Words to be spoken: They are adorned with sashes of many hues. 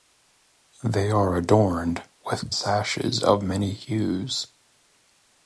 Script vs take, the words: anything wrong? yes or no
no